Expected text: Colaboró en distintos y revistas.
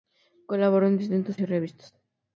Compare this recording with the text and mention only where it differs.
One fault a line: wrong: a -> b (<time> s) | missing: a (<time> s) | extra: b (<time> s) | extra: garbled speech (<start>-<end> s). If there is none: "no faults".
no faults